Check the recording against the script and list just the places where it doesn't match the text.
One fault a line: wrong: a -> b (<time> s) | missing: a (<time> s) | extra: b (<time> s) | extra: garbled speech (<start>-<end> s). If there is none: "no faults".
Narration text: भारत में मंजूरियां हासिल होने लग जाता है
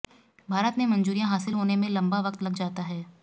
extra: में लंबा वक्त (1.7 s)